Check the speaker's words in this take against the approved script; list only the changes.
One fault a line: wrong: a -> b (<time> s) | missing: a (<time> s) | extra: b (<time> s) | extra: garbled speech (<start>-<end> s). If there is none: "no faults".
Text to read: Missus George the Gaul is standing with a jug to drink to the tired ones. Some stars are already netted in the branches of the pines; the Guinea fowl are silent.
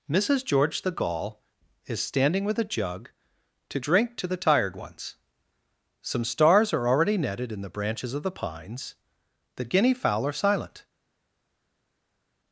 no faults